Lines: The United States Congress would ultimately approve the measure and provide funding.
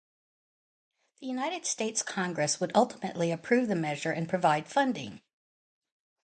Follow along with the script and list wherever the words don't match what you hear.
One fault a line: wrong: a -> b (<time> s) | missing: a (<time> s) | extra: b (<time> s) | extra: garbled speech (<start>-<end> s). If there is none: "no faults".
no faults